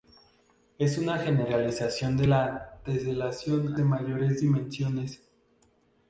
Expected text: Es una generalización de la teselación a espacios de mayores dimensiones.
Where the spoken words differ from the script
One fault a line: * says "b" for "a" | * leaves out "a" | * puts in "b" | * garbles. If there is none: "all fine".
* leaves out "a espacios"